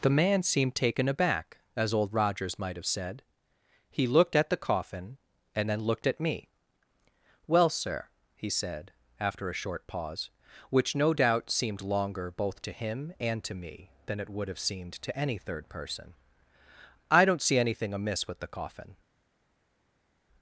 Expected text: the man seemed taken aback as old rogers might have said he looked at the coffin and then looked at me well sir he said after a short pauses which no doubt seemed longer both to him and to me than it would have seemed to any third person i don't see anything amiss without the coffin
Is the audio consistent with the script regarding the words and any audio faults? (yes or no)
no